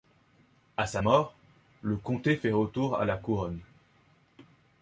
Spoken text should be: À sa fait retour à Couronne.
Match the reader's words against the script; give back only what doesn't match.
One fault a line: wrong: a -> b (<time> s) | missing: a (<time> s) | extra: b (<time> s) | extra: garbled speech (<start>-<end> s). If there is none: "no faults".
extra: mort le comté (1.0 s)
extra: la (3.0 s)